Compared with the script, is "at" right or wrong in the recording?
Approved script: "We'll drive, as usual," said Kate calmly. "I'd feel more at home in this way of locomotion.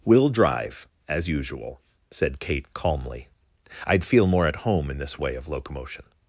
right